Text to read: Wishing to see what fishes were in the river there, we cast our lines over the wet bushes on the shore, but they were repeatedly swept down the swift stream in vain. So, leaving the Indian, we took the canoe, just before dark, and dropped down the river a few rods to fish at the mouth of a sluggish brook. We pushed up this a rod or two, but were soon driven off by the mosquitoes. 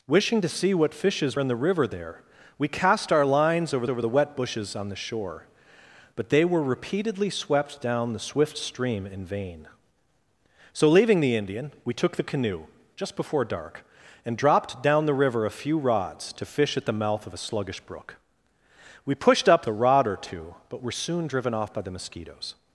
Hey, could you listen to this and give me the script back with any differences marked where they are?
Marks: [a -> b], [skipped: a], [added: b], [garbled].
Wishing to see what fishes [skipped: were] in the river there, we cast our lines over [added: over] the wet bushes on the shore, but they were repeatedly swept down the swift stream in vain. So, leaving the Indian, we took the canoe, just before dark, and dropped down the river a few rods to fish at the mouth of a sluggish brook. We pushed up [skipped: this] a rod or two, but were soon driven off by the mosquitoes.